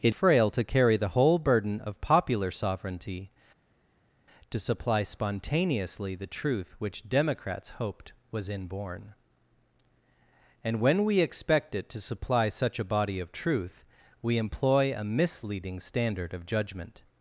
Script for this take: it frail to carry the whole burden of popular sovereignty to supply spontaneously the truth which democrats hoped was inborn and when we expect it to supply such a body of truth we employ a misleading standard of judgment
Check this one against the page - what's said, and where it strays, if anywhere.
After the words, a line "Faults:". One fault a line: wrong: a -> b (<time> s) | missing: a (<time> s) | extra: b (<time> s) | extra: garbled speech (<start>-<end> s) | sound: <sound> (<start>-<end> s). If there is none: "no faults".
it frail to carry the whole burden of popular sovereignty to supply spontaneously the truth which democrats hoped was inborn and when we expect it to supply such a body of truth we employ a misleading standard of judgment
Faults:
no faults